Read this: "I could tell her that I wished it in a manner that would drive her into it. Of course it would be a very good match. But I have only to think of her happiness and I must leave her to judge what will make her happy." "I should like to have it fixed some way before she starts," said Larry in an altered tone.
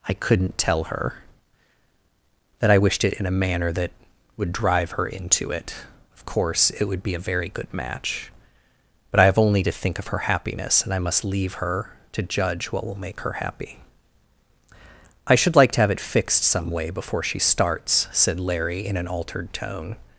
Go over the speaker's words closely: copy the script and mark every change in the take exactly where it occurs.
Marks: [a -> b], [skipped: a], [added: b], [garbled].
"I [could -> couldn't] tell her that I wished it in a manner that would drive her into it. Of course it would be a very good match. But I have only to think of her happiness and I must leave her to judge what will make her happy." "I should like to have it fixed some way before she starts," said Larry in an altered tone.